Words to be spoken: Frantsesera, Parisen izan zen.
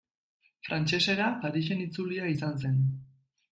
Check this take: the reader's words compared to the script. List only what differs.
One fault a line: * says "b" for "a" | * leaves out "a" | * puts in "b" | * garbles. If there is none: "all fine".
* puts in "itzulia"